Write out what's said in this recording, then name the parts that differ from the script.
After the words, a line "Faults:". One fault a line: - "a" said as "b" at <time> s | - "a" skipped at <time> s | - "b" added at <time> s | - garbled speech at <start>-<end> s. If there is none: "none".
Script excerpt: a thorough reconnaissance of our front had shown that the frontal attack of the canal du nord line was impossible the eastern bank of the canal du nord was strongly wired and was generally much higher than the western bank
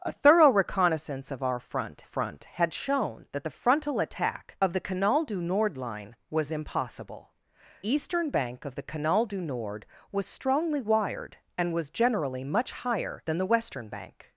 a thorough reconnaissance of our front front had shown that the frontal attack of the canal du nord line was impossible eastern bank of the canal du nord was strongly wired and was generally much higher than the western bank
Faults:
- "front" added at 2.0 s
- "the" skipped at 7.3 s